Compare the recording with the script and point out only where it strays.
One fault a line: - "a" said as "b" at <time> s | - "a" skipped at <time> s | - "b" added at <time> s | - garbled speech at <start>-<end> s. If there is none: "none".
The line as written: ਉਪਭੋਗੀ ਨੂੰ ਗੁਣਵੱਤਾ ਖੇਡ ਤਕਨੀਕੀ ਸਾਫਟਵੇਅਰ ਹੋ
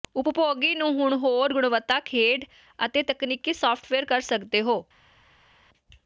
- "ਹੁਣ ਹੋਰ" added at 0.9 s
- "ਅਤੇ" added at 2.8 s
- "ਕਰ ਸਕਦੇ" added at 4.0 s